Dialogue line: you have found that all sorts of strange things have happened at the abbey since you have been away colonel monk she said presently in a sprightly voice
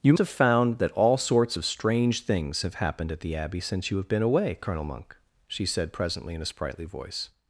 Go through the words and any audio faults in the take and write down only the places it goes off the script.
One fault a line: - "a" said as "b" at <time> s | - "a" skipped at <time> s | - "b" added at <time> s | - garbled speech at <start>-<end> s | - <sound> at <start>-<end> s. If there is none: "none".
none